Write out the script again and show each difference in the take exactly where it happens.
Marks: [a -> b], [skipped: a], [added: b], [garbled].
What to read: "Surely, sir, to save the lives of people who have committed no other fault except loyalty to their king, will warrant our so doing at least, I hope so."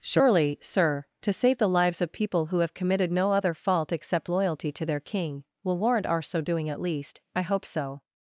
"Surely, sir, to save the lives of people who have committed no other fault except loyalty to their king, will warrant our so doing at least, I hope so."